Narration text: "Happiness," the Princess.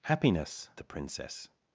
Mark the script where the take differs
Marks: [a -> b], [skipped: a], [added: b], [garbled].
"Happiness," the Princess.